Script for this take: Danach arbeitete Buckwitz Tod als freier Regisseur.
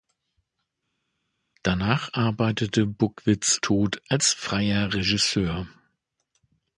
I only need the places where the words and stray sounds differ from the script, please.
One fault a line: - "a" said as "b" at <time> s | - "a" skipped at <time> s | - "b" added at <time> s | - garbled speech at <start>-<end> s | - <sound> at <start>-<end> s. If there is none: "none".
none